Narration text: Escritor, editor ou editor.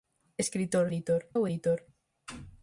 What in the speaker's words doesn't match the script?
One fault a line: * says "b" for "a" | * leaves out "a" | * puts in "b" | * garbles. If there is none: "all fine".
all fine